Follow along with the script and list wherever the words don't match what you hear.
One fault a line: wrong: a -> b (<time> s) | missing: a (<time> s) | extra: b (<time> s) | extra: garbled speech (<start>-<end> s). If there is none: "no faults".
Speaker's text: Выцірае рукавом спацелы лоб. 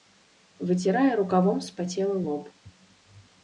no faults